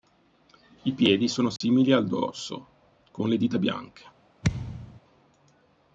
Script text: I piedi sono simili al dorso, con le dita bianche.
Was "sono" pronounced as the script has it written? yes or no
yes